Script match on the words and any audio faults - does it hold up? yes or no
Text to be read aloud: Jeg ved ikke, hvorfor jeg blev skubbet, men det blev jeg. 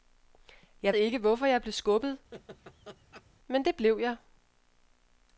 no